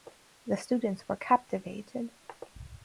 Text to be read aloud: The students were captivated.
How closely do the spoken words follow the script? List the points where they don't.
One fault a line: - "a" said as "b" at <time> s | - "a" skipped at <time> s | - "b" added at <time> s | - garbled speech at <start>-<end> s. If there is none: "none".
none